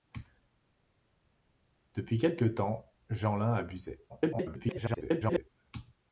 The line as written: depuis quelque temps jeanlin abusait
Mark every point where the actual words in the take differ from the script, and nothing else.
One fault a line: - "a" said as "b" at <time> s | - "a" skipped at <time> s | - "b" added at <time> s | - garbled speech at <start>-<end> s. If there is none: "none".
- garbled speech at 4.1-5.5 s